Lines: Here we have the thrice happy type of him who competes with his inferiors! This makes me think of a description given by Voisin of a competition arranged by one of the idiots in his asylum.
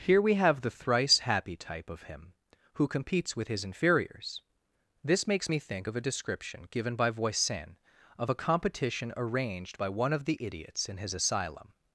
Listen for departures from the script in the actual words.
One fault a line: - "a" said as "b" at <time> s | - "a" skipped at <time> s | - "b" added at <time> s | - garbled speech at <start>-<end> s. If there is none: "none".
none